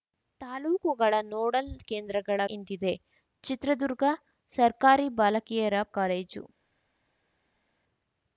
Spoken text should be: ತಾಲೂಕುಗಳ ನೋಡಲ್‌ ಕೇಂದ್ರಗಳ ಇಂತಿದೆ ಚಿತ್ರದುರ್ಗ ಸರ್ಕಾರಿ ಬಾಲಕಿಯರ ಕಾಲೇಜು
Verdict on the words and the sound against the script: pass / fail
pass